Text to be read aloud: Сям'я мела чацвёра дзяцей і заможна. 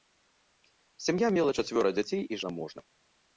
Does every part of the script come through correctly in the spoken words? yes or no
yes